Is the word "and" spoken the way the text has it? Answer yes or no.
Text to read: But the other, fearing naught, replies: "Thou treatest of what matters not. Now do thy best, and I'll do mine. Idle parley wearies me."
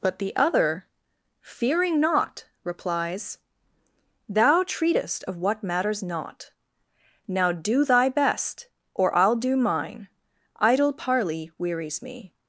no